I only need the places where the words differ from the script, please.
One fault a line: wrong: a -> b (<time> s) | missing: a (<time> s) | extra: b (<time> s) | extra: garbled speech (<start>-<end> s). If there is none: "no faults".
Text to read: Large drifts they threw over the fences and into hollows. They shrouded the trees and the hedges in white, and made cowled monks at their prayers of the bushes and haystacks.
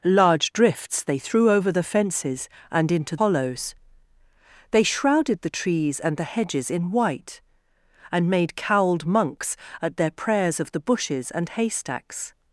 no faults